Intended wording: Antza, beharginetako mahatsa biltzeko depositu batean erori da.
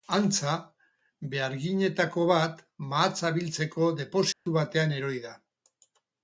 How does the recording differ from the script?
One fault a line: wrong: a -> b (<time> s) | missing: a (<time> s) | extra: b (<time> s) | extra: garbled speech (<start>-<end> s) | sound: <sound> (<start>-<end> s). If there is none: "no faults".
extra: bat (2.3 s)
sound: dropout (4.3-4.5 s)